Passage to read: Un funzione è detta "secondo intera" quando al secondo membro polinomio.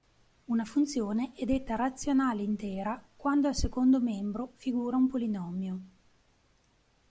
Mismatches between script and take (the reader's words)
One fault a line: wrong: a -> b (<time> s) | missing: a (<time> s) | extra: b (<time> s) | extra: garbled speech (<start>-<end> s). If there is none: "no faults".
wrong: Un -> Una (0.5 s)
wrong: secondo -> razionale (1.8 s)
extra: figura un (4.5 s)